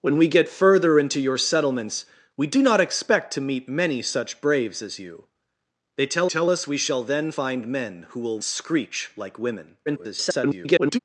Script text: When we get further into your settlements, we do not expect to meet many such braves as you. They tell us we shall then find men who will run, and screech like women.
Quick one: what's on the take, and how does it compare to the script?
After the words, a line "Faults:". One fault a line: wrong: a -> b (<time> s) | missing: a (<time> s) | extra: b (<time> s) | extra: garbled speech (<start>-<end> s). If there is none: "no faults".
When we get further into your settlements, we do not expect to meet many such braves as you. They tell tell us we shall then find men who will screech like women. [garbled]
Faults:
extra: tell (6.3 s)
missing: run and (8.4 s)
extra: garbled speech (9.9-11.0 s)